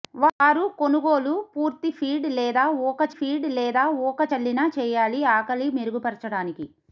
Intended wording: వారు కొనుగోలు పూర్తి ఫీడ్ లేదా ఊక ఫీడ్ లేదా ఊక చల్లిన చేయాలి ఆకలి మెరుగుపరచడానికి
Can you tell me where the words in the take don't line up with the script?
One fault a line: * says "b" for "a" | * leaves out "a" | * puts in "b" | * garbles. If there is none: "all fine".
all fine